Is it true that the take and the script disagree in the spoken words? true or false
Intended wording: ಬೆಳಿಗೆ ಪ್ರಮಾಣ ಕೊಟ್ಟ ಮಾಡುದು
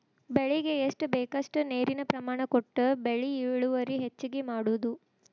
true